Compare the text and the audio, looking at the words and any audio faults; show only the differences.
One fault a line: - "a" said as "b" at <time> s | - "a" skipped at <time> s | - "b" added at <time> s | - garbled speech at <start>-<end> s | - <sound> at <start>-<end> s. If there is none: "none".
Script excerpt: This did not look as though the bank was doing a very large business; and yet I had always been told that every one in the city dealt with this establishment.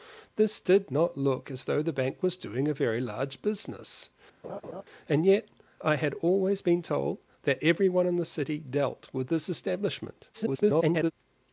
- laugh at 4.4-4.8 s
- garbled speech at 10.3-11.1 s